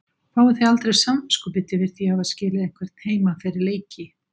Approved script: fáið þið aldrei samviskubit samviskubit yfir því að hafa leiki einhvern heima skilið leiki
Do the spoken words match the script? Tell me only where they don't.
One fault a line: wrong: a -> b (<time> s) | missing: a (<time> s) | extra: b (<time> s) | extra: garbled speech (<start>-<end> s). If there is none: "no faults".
missing: samviskubit (1.8 s)
wrong: leiki -> skilið (2.3 s)
wrong: skilið -> fyrir (3.4 s)